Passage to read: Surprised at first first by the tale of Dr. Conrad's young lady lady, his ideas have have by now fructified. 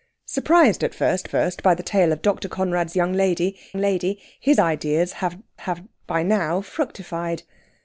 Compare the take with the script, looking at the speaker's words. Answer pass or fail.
pass